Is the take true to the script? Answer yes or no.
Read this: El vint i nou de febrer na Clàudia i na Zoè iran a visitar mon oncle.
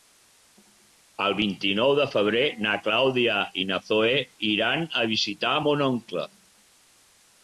yes